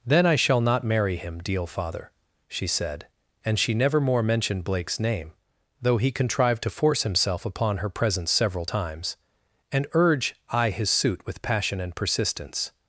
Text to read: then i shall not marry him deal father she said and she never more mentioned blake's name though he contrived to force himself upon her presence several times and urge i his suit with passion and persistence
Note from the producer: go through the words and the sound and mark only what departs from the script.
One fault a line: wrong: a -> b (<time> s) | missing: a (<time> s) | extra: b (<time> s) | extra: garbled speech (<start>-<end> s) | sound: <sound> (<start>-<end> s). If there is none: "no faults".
no faults